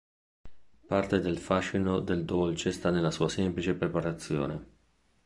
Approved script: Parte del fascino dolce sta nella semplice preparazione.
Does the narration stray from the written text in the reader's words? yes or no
yes